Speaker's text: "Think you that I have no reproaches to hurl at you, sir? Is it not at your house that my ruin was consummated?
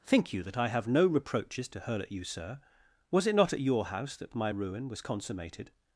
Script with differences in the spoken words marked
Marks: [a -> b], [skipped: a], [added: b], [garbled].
"Think you that I have no reproaches to hurl at you, sir? [Is -> Was] it not at your house that my ruin was consummated?